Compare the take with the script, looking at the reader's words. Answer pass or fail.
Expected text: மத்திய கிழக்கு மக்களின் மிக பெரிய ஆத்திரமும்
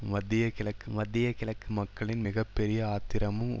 fail